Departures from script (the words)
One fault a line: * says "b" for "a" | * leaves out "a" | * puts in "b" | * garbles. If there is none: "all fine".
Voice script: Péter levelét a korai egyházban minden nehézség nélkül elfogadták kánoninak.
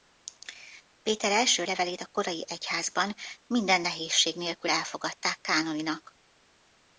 * puts in "első"